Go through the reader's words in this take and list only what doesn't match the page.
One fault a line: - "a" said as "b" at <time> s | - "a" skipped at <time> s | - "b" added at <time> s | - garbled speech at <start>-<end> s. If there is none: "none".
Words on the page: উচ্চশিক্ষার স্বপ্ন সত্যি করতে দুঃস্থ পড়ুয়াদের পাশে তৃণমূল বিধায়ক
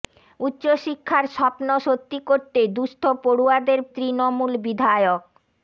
- "পাশে" skipped at 3.8 s